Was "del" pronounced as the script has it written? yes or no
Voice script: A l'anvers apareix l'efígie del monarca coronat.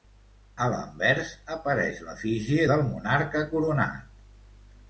yes